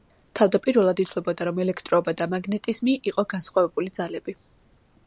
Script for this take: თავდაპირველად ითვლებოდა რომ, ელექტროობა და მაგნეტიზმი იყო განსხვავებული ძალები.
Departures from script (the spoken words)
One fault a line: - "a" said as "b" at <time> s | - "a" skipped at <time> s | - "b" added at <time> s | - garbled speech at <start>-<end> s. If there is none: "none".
none